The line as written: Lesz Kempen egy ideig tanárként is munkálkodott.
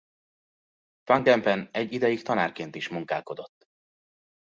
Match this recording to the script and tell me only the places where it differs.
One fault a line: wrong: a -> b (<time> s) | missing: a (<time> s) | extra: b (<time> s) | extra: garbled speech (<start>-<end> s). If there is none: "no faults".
wrong: Lesz -> Van (1.0 s)